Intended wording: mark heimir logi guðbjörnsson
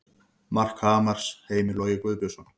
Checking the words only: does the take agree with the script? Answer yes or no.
no